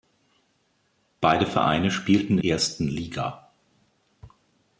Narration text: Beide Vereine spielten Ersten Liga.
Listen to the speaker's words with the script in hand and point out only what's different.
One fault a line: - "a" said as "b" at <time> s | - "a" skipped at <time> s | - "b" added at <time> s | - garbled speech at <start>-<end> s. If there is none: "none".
none